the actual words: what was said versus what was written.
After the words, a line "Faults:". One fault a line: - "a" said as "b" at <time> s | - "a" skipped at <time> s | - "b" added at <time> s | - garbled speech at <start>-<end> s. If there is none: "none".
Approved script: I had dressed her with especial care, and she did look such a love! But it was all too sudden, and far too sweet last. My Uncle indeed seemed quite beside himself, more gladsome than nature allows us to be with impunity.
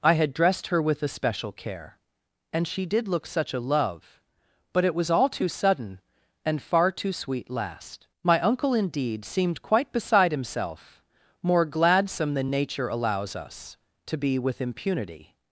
I had dressed her with especial care, and she did look such a love! But it was all too sudden, and far too sweet last. My Uncle indeed seemed quite beside himself, more gladsome than nature allows us to be with impunity.
Faults:
none